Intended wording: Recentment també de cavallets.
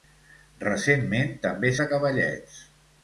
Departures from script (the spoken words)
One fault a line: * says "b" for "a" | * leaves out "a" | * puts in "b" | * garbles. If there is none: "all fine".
all fine